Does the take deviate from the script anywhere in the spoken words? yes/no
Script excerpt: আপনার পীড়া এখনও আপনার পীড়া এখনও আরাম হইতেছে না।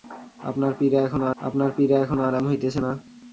no